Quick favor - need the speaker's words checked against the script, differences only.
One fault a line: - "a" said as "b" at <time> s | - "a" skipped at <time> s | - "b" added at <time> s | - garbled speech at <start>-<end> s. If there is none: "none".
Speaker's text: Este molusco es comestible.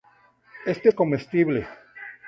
- "molusco" skipped at 0.9 s